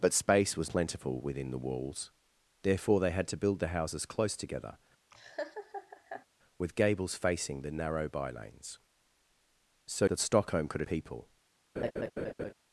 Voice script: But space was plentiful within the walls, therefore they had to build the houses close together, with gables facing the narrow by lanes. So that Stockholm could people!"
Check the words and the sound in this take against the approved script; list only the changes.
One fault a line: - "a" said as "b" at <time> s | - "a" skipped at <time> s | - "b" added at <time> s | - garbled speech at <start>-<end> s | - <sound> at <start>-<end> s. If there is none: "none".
- laugh at 5.1-6.3 s
- laugh at 11.8-12.5 s